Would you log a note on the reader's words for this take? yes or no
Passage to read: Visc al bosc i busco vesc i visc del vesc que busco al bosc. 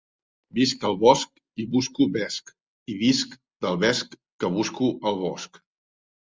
no